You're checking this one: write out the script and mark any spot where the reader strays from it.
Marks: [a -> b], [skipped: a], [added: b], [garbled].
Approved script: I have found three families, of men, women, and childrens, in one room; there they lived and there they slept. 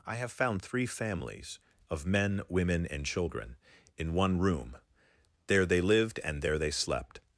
I have found three families, of men, women, and [childrens, -> children] in one room; there they lived and there they slept.